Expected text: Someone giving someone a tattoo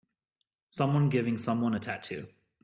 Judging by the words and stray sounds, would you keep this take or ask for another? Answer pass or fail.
pass